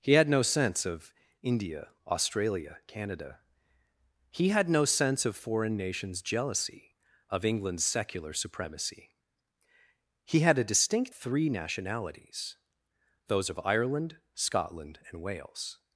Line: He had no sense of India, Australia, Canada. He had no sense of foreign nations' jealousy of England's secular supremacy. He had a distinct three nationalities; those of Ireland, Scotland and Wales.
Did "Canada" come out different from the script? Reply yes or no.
no